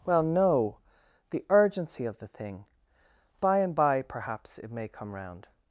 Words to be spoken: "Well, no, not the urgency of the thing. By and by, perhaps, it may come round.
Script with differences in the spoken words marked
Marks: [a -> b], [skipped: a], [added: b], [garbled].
"Well, no, [skipped: not] the urgency of the thing. By and by, perhaps, it may come round.